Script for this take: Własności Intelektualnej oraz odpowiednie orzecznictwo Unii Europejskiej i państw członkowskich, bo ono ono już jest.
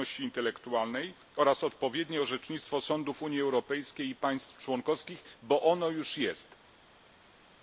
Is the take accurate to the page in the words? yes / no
no